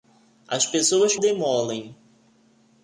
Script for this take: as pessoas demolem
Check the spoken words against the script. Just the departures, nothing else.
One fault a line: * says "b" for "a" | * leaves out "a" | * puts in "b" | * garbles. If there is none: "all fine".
all fine